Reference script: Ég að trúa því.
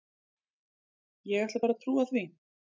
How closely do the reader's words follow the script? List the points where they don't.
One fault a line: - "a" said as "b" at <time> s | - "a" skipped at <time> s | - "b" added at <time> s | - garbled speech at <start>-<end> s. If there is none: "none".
- "ætla bara" added at 1.4 s